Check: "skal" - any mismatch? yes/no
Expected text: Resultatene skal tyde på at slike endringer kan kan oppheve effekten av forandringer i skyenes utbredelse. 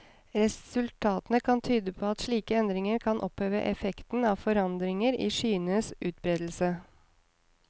yes